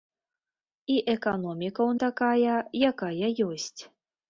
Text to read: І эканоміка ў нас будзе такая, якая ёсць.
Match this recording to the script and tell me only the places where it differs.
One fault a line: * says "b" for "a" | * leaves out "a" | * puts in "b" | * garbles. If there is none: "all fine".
* leaves out "нас будзе"